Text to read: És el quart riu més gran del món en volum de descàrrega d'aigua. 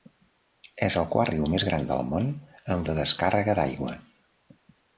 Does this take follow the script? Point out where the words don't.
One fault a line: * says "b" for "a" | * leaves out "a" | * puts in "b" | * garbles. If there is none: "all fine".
* leaves out "volum"